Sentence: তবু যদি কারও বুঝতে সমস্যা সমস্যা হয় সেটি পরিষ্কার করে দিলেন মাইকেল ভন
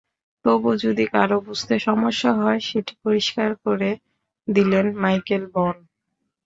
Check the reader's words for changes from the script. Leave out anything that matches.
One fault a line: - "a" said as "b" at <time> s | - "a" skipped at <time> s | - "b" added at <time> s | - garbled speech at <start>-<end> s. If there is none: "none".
- "সমস্যা" skipped at 2.3 s